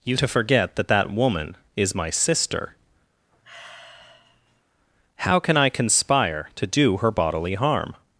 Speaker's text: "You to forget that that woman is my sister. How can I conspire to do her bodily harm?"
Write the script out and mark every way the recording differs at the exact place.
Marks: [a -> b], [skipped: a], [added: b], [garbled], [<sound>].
"You to forget that that woman is my sister. [sigh] How can I conspire to do her bodily harm?"